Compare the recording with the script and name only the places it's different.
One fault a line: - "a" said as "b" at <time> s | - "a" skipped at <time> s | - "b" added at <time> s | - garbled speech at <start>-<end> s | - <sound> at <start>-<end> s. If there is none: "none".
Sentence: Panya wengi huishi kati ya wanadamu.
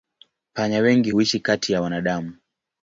none